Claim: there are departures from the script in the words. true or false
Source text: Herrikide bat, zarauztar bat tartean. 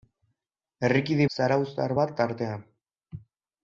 true